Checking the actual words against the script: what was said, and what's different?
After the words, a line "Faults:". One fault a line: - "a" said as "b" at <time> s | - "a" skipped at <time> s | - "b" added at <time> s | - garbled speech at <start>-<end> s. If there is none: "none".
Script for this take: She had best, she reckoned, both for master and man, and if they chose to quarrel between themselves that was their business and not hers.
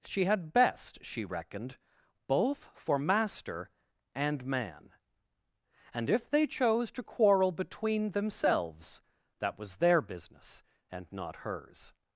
She had best, she reckoned, both for master and man, and if they chose to quarrel between themselves that was their business and not hers.
Faults:
none